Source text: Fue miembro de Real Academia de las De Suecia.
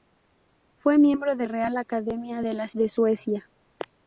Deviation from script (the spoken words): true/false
false